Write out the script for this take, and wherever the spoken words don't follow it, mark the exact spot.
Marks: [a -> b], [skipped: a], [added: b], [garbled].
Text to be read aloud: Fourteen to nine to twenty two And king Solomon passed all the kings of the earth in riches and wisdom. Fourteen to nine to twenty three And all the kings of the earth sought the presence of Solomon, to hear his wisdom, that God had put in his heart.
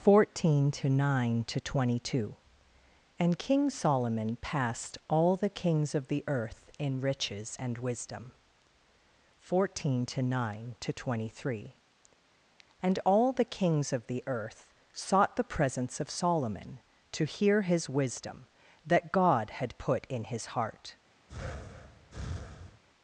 Fourteen to nine to twenty two And king Solomon passed all the kings of the earth in riches and wisdom. Fourteen to nine to twenty three And all the kings of the earth sought the presence of Solomon, to hear his wisdom, that God had put in his heart.